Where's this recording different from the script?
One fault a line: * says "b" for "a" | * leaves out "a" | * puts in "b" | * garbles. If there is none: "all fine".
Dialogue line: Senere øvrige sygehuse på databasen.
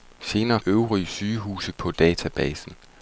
all fine